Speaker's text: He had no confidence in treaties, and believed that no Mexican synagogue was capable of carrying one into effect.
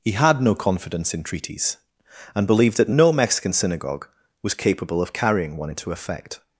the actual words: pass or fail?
pass